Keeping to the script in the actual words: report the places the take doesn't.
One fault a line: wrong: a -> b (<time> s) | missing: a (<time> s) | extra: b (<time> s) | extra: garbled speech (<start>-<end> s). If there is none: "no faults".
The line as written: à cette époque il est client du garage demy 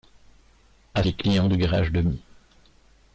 missing: cette époque il (1.0 s)